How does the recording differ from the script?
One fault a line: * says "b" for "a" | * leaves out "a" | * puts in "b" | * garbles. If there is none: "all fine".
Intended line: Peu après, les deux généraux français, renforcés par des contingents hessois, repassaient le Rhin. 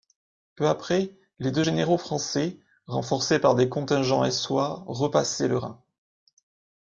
all fine